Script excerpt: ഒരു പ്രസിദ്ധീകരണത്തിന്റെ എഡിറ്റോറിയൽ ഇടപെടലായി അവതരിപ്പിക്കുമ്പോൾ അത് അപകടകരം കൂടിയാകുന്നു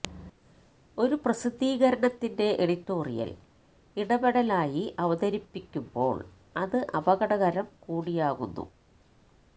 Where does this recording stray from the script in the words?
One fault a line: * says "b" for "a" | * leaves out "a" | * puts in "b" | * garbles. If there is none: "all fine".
all fine